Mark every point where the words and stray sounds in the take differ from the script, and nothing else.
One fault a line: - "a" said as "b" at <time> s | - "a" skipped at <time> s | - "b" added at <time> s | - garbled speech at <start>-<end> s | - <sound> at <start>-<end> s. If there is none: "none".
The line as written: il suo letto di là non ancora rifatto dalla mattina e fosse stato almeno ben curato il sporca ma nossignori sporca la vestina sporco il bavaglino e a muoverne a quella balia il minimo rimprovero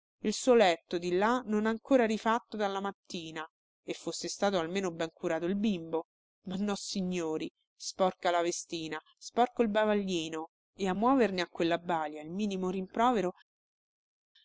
- "sporca" said as "bimbo" at 5.6 s